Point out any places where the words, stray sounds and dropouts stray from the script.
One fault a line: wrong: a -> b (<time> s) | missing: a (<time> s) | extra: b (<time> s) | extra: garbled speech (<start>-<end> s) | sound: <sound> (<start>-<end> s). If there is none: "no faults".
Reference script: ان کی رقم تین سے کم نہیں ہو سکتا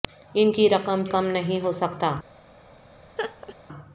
missing: تین سے (1.0 s)
sound: laugh (3.2-3.6 s)